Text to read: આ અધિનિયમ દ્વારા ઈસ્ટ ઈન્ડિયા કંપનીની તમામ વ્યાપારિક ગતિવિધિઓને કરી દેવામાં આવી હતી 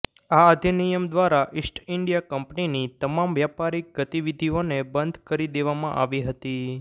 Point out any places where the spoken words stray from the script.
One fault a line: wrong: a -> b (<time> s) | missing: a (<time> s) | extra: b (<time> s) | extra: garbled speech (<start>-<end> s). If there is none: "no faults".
extra: બંધ (4.9 s)